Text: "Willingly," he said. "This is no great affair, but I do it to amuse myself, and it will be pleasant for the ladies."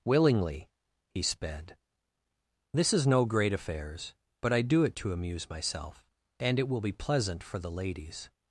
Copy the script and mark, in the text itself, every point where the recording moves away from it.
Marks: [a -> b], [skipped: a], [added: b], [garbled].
"Willingly," he [said. -> sped] "This is no great [affair, -> affairs] but I do it to amuse myself, and it will be pleasant for the ladies."